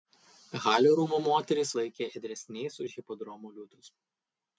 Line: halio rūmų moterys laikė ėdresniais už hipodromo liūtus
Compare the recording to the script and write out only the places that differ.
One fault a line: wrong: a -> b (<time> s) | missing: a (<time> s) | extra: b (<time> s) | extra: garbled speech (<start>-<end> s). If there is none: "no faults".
no faults